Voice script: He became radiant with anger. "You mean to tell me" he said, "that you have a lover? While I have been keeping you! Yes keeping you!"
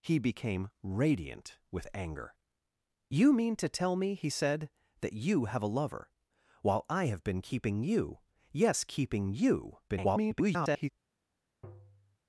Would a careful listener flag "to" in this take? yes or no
no